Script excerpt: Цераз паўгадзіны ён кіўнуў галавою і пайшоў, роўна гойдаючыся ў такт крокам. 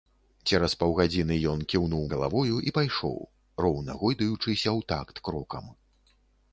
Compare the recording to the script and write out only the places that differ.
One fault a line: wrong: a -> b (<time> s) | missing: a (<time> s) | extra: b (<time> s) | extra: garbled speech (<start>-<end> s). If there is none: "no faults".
no faults